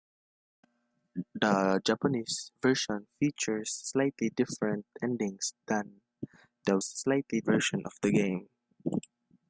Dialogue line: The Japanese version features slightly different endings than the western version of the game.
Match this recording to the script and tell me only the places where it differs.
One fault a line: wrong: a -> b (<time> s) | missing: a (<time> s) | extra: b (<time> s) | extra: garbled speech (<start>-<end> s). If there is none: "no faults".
wrong: western -> slightly (6.8 s)